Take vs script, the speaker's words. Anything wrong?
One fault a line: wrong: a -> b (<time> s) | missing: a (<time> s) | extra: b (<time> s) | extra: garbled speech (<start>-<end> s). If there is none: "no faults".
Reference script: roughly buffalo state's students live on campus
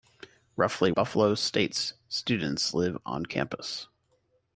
no faults